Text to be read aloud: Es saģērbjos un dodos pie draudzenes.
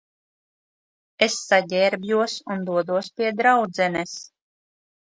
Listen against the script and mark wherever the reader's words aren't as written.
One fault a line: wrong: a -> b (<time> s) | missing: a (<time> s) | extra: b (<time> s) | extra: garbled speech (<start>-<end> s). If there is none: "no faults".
no faults